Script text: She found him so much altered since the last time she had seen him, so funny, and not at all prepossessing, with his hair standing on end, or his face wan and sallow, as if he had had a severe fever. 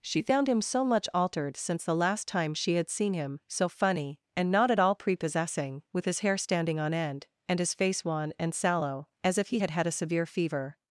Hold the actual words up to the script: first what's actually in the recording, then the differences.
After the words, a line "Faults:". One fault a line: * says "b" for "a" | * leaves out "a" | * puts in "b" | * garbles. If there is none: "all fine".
She found him so much altered since the last time she had seen him, so funny, and not at all prepossessing, with his hair standing on end, and his face wan and sallow, as if he had had a severe fever.
Faults:
* says "and" for "or"